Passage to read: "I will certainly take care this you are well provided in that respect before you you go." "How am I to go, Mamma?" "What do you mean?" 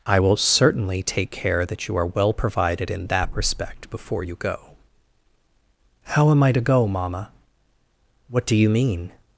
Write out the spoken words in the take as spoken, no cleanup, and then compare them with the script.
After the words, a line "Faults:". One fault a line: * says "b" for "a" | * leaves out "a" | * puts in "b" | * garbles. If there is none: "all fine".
"I will certainly take care that you are well provided in that respect before you go." "How am I to go, Mamma?" "What do you mean?"
Faults:
* says "that" for "this"
* leaves out "you"